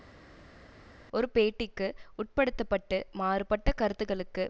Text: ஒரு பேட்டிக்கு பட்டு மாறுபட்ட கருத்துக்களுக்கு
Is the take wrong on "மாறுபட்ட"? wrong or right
right